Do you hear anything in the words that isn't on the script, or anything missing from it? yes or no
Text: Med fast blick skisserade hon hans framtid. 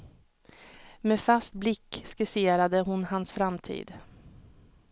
no